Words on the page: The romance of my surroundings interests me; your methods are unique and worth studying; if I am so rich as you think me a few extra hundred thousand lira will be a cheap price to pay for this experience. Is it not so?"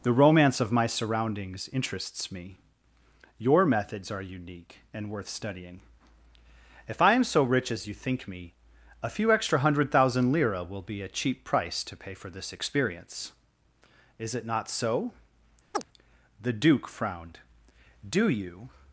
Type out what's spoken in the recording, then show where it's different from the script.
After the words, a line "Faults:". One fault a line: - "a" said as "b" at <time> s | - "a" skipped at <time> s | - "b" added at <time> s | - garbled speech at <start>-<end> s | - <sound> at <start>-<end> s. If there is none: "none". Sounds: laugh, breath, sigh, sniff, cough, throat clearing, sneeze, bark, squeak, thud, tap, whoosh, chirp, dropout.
The romance of my surroundings interests me; your methods are unique and worth studying; if I am so rich as you think me a few extra hundred thousand lira will be a cheap price to pay for this experience. Is it not so?" The Duke frowned. "Do you
Faults:
- chirp at 15.7-15.8 s
- "The Duke frowned Do you" added at 16.4 s